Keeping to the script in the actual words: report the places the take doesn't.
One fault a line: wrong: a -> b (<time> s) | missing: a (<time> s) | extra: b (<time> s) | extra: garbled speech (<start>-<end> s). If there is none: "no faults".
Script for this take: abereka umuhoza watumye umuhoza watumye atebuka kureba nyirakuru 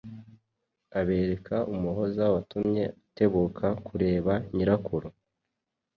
missing: umuhoza watumye (2.8 s)